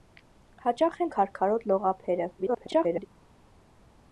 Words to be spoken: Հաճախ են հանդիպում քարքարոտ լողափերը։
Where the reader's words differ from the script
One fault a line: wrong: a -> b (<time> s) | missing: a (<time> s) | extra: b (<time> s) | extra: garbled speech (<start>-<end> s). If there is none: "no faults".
missing: հանդիպում (1.1 s)
extra: garbled speech (2.4-3.1 s)